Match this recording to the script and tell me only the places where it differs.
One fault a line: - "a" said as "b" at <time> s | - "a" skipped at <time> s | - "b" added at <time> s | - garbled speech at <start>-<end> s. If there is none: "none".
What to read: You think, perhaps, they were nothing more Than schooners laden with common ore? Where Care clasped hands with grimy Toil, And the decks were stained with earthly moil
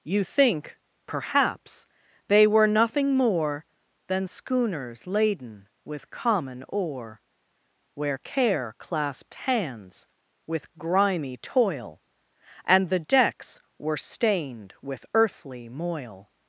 none